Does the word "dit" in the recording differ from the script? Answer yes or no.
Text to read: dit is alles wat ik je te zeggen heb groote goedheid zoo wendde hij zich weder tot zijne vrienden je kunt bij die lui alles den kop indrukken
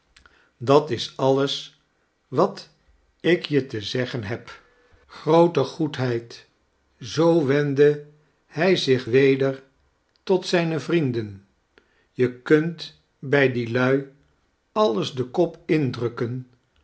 yes